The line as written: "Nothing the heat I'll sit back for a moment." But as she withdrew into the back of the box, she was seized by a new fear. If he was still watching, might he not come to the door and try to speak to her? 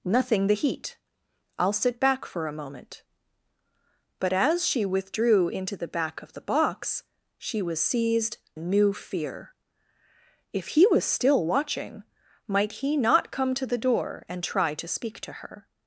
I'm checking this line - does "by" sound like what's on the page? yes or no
no